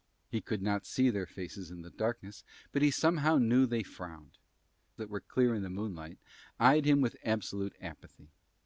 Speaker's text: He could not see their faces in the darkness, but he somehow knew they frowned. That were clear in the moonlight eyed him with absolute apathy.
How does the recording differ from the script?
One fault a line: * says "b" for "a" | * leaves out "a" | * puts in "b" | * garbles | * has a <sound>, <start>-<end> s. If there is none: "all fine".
all fine